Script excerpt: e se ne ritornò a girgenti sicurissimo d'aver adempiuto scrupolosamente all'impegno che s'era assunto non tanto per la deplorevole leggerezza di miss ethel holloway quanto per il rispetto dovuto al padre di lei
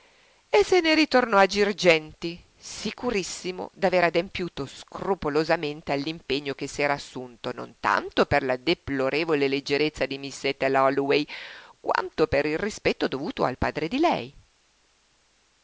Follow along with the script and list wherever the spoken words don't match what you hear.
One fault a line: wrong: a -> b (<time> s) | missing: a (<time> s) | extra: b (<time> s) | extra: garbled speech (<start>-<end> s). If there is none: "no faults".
no faults